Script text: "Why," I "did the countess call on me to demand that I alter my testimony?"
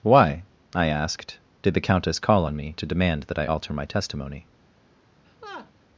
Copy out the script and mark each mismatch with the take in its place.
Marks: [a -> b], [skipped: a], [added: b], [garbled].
"Why," I [added: asked] "did the countess call on me to demand that I alter my testimony?"